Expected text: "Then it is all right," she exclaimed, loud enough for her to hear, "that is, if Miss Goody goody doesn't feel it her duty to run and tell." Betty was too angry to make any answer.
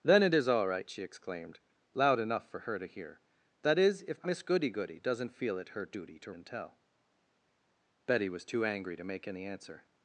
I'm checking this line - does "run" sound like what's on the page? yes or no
no